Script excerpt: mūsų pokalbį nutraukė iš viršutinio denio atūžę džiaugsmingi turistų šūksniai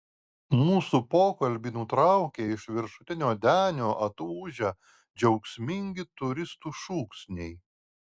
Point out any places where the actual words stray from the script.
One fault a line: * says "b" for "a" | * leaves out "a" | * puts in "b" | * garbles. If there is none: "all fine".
all fine